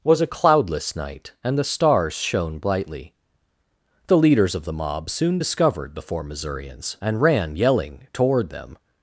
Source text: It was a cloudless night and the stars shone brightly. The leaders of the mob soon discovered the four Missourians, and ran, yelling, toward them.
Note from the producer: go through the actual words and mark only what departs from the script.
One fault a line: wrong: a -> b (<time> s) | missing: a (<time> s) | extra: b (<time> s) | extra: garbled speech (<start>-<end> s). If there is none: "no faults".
missing: It (0.0 s)